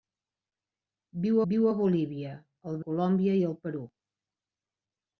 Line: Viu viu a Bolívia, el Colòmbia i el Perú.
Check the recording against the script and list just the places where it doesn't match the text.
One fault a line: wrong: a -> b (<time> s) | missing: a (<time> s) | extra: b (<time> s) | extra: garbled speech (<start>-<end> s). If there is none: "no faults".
no faults